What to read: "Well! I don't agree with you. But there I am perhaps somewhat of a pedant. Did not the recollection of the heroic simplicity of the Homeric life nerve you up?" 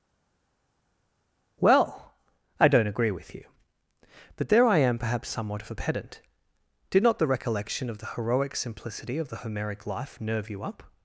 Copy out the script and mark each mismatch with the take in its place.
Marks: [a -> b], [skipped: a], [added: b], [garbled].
"Well! I don't agree with you. But there I am perhaps somewhat of a pedant. Did not the recollection of the heroic simplicity of the Homeric life nerve you up?"